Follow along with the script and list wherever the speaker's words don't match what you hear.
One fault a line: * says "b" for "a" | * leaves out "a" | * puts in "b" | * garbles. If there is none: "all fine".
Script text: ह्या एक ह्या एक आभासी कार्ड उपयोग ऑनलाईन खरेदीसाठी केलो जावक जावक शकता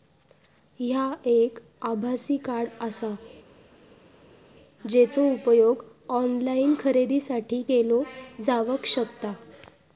* says "आभासी कार्ड आसा जेचो" for "ह्या एक आभासी कार्ड"
* leaves out "जावक"